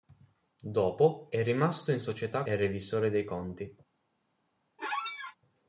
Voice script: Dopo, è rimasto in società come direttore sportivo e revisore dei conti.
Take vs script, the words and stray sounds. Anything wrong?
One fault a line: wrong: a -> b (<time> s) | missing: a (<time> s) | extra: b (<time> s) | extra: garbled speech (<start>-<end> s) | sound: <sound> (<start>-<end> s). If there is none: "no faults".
missing: come direttore sportivo (2.5 s)
sound: squeak (4.8-5.4 s)